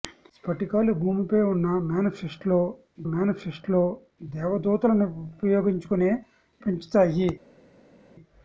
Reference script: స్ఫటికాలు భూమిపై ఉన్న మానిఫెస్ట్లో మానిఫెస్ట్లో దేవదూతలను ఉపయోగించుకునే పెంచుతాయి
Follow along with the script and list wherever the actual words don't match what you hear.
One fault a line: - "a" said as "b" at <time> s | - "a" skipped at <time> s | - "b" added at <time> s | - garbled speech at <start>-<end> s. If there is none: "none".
none